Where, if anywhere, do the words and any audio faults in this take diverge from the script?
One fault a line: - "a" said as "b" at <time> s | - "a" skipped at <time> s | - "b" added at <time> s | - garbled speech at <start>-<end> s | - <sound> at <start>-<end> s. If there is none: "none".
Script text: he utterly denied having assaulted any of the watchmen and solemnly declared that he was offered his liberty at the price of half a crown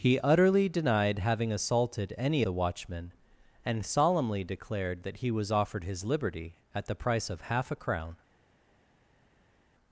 - "of" skipped at 2.4 s